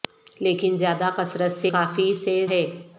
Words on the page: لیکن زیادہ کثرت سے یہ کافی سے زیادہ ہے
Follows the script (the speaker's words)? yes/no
no